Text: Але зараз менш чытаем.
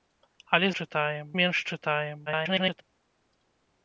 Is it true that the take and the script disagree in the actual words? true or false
true